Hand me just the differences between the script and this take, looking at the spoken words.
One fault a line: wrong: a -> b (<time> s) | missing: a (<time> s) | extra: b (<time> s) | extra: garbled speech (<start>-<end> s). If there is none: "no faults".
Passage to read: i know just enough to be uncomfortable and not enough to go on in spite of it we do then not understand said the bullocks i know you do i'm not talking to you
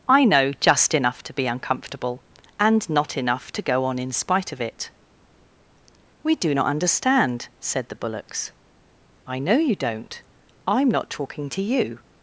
missing: then (6.5 s)
wrong: do -> don't (9.7 s)